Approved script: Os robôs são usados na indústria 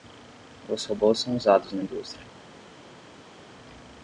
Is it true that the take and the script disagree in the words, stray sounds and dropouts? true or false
false